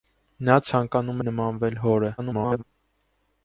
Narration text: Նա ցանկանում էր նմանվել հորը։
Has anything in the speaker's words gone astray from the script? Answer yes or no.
yes